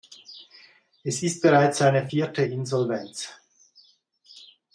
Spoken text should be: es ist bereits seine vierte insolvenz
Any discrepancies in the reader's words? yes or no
no